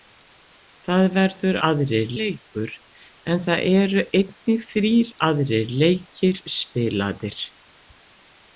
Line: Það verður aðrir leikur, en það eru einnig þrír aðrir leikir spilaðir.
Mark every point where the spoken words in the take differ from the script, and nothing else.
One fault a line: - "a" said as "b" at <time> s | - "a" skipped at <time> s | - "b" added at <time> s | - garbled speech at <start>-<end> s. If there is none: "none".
none